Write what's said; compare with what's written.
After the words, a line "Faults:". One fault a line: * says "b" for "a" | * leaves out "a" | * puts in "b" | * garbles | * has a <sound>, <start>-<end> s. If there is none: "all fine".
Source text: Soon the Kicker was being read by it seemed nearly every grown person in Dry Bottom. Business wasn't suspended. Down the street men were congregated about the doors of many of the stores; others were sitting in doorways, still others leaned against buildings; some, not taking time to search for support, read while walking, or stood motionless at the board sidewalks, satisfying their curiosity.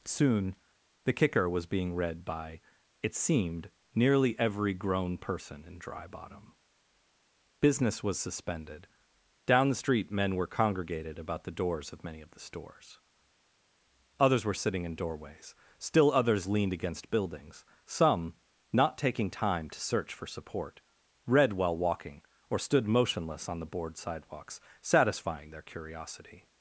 Soon the Kicker was being read by it seemed nearly every grown person in Dry Bottom. Business was suspended. Down the street men were congregated about the doors of many of the stores; others were sitting in doorways, still others leaned against buildings; some, not taking time to search for support, read while walking, or stood motionless on the board sidewalks, satisfying their curiosity.
Faults:
* says "was" for "wasn't"
* says "on" for "at"